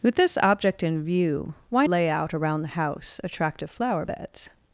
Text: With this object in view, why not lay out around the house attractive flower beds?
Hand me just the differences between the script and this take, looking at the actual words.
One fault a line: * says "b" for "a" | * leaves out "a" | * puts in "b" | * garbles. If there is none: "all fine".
* leaves out "not"